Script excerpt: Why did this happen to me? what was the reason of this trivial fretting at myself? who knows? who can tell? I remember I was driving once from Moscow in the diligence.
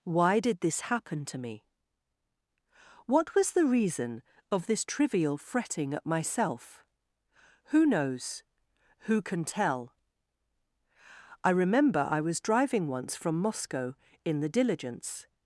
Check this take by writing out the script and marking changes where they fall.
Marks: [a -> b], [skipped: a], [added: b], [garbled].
Why did this happen to me? what was the reason of this trivial fretting at myself? who knows? who can tell? I remember I was driving once from Moscow in the diligence.